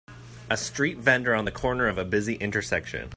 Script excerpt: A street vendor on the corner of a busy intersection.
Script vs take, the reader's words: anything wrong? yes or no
no